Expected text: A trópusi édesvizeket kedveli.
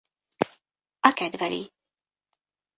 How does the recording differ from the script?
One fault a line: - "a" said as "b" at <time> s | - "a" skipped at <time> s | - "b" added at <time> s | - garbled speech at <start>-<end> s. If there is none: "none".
- "trópusi édesvizeket" skipped at 1.1 s